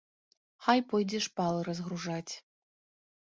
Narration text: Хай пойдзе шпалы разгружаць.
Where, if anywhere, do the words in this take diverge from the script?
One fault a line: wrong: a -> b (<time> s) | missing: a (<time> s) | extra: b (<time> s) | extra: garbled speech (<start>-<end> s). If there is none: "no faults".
no faults